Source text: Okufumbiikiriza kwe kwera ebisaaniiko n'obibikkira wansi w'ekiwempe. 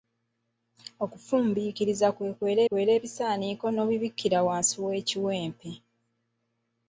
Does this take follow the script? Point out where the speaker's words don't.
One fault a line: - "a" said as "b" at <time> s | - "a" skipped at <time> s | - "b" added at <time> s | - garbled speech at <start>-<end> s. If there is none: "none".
- "kwera" added at 2.7 s